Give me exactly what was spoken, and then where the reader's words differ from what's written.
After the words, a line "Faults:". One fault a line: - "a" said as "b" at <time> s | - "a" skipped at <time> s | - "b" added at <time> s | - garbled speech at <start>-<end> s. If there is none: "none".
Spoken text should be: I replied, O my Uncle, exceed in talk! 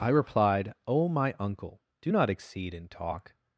I replied, O my Uncle, do not exceed in talk!
Faults:
- "do not" added at 2.0 s